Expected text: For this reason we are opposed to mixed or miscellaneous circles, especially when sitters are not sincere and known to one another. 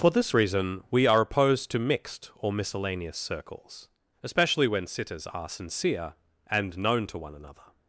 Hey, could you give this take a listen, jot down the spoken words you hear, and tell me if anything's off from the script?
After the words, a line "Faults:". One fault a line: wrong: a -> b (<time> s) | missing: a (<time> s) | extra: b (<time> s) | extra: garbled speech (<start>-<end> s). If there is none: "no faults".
For this reason we are opposed to mixed or miscellaneous circles, especially when sitters are sincere and known to one another.
Faults:
missing: not (5.5 s)